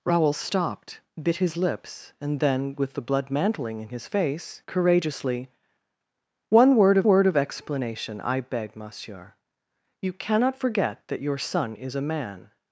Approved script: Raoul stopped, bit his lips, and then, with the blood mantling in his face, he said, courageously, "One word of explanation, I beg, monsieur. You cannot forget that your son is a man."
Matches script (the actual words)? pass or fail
fail